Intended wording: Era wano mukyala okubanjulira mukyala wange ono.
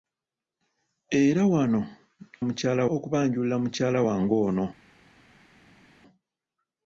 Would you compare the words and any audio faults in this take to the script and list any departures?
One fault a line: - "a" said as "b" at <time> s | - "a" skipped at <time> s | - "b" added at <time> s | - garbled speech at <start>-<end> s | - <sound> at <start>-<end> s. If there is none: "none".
none